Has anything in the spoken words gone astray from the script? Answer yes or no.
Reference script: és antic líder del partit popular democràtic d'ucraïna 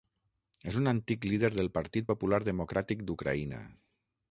yes